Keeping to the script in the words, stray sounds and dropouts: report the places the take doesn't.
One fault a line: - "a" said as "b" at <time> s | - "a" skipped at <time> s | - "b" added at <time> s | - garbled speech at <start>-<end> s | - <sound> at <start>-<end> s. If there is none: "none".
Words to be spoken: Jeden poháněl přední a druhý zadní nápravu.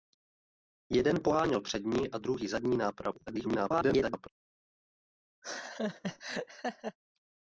- garbled speech at 3.3-4.3 s
- laugh at 5.4-7.0 s